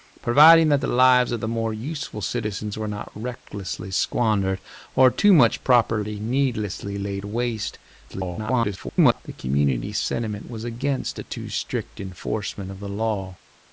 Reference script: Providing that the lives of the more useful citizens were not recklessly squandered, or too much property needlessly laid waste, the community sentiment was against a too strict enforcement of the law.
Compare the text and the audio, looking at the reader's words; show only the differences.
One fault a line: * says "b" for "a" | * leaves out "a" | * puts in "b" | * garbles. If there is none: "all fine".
* garbles